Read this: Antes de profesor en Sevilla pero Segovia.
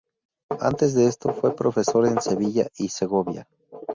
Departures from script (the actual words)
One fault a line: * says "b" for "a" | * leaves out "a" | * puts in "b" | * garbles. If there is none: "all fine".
* puts in "esto fue"
* says "y" for "pero"